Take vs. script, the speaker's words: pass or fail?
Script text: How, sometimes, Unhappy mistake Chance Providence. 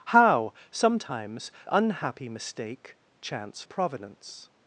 pass